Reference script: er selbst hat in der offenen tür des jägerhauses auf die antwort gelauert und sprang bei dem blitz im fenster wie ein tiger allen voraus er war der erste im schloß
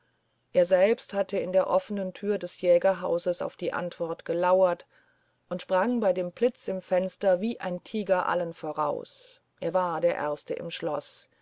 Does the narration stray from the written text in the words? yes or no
yes